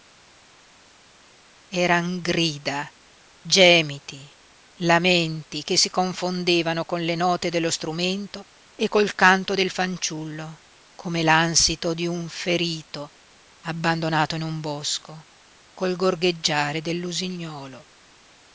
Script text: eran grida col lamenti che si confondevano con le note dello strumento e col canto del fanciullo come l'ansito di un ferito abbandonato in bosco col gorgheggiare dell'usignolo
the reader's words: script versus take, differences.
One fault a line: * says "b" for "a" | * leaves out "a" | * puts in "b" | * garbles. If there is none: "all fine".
* says "gemiti" for "col"
* puts in "un"